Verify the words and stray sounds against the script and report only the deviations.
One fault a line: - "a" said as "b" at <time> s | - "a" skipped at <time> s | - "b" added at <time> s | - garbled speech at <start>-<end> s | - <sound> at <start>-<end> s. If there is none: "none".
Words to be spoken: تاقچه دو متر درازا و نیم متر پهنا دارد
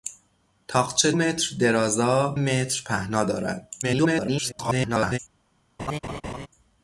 - "دو" skipped at 1.1 s
- "و نیم" skipped at 2.4 s
- garbled speech at 3.8-5.2 s
- laugh at 5.8-6.5 s